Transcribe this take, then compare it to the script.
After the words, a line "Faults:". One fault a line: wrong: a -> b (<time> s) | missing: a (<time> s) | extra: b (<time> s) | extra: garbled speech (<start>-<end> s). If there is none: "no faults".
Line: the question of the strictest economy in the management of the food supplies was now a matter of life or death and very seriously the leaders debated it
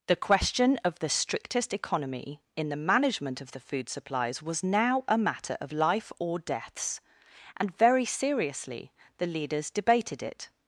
the question of the strictest economy in the management of the food supplies was now a matter of life or deaths and very seriously the leaders debated it
Faults:
wrong: death -> deaths (6.4 s)